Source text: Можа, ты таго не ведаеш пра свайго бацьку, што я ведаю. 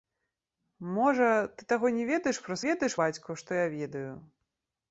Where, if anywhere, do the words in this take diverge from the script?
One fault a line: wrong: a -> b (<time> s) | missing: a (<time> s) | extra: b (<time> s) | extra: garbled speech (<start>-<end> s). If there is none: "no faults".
wrong: свайго -> ведаеш (2.7 s)